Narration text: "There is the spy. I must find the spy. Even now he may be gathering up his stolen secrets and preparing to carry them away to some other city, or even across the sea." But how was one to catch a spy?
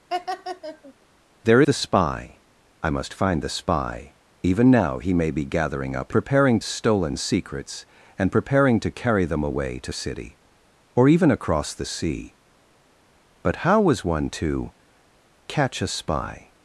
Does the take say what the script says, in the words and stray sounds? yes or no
no